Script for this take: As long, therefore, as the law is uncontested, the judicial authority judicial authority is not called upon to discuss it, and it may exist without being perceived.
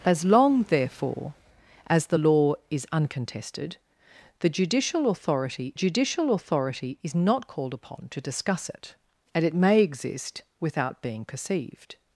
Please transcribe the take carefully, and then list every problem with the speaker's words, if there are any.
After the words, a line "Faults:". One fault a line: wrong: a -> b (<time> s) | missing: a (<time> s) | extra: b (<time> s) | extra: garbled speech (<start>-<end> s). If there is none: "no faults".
As long, therefore, as the law is uncontested, the judicial authority judicial authority is not called upon to discuss it, and it may exist without being perceived.
Faults:
no faults